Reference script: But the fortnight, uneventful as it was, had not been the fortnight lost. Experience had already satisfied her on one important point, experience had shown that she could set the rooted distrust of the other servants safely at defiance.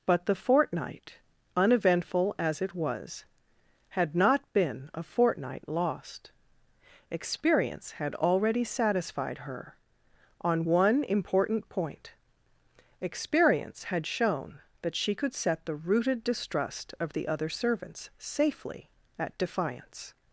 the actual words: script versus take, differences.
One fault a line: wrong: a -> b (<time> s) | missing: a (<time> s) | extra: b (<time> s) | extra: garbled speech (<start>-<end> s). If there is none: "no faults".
wrong: the -> a (4.9 s)